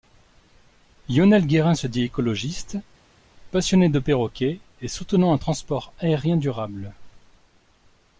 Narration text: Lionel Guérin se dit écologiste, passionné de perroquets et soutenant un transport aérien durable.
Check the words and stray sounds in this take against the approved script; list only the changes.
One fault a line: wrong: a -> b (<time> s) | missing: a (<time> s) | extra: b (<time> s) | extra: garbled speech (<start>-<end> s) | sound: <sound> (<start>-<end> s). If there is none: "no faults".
no faults